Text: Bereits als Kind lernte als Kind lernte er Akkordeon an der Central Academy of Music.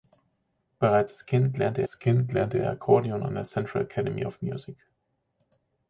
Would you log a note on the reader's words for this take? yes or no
no